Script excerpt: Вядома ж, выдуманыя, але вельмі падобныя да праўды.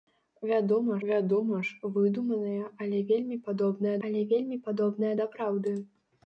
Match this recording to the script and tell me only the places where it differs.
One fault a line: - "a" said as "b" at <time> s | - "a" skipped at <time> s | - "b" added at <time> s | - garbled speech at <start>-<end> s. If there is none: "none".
- "вядома" added at 1.1 s
- "але вельмі падобныя" added at 4.1 s